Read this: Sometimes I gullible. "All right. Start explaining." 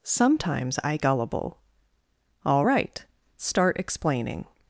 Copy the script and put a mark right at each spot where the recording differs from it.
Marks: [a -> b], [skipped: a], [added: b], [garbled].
Sometimes I gullible. "All right. Start explaining."